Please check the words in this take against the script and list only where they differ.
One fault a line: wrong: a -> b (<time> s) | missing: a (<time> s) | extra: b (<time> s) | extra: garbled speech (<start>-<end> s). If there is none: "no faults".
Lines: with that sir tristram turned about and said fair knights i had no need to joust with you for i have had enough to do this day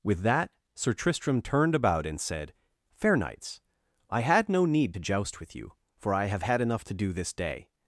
no faults